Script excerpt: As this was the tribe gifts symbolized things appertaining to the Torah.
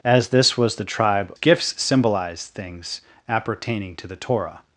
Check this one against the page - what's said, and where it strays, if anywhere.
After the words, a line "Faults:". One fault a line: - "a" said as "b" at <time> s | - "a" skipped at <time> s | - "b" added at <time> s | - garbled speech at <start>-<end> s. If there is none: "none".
As this was the tribe gifts symbolized things appertaining to the Torah.
Faults:
none